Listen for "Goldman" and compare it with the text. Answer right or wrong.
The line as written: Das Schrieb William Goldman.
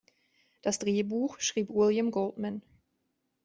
right